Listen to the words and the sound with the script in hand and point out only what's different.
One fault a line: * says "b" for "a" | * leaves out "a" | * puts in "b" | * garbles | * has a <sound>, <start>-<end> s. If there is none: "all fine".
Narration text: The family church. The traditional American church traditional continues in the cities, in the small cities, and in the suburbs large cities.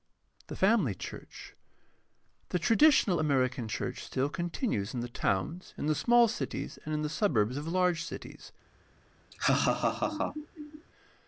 * says "still" for "traditional"
* says "towns" for "cities"
* puts in "of"
* has a laugh, 9.3-10.9 s